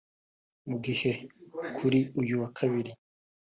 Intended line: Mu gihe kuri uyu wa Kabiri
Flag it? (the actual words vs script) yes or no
no